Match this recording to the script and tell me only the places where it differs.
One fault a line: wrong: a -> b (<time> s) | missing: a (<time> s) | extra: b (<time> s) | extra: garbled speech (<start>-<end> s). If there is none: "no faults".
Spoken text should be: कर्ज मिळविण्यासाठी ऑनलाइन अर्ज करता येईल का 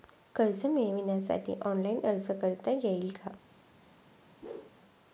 no faults